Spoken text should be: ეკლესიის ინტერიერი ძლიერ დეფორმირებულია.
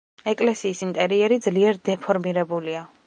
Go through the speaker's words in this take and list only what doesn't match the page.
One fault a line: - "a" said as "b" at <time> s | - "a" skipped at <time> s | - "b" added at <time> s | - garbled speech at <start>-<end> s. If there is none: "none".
none